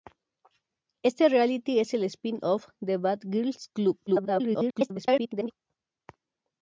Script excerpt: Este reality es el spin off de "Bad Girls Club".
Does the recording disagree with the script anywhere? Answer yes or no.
yes